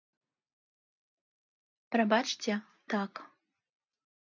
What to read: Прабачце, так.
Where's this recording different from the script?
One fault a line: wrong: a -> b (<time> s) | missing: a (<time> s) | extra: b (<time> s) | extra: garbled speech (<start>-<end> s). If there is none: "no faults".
no faults